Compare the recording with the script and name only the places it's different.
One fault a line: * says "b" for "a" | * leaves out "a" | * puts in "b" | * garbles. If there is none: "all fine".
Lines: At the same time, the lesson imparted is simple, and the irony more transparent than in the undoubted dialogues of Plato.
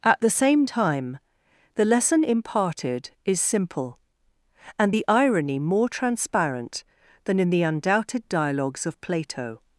all fine